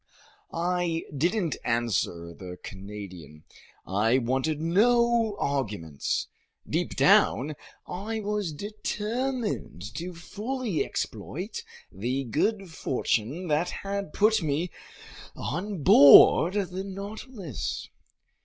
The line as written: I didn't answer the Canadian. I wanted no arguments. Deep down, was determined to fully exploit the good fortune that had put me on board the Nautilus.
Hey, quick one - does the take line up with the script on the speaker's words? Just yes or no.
no